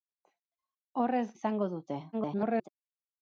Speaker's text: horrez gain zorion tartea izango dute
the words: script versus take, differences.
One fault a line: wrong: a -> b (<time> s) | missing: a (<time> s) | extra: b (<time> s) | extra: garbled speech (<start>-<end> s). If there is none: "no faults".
missing: gain zorion tartea (1.2 s)
extra: garbled speech (2.1-2.7 s)